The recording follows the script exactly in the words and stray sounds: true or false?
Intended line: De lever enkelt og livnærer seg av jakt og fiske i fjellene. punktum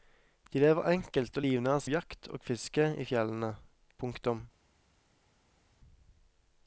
false